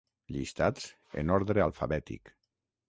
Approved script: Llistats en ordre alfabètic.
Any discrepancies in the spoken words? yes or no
no